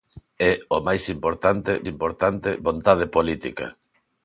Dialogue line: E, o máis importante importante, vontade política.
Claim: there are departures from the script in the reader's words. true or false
false